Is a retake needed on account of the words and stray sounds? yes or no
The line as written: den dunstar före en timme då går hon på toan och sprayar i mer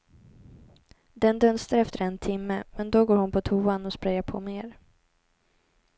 yes